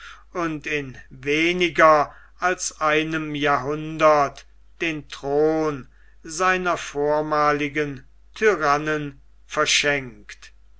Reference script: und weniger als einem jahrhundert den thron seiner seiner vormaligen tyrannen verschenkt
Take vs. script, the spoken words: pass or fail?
fail